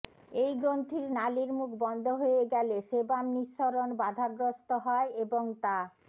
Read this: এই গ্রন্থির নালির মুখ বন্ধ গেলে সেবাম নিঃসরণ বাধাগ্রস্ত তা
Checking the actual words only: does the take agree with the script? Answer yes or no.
no